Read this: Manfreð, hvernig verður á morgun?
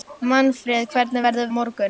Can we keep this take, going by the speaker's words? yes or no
yes